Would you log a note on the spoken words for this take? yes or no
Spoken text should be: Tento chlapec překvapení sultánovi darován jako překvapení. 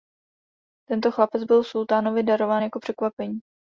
yes